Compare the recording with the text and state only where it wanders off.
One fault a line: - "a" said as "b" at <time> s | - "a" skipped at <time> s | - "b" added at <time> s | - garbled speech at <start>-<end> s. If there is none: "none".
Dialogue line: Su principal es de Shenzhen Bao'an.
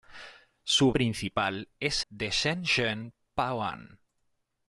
none